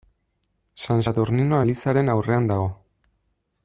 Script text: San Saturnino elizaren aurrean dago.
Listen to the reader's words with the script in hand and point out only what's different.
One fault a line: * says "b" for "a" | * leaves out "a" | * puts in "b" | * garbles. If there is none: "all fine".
all fine